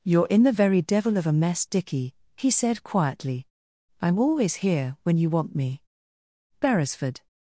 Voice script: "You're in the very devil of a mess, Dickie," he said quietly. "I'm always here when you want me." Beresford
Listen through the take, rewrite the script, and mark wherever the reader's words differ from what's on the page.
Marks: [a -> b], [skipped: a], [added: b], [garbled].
"You're in the very devil of a mess, Dickie," he said quietly. "I'm always here when you want me." Beresford